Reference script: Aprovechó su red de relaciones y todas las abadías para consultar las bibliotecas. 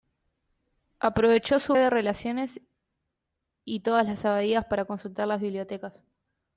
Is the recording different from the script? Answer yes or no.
yes